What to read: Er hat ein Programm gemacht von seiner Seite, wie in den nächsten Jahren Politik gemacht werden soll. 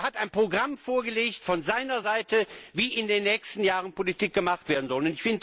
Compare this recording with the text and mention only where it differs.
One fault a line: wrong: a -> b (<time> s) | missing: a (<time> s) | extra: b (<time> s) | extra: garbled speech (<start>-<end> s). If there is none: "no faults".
wrong: gemacht -> vorgelegt (0.8 s)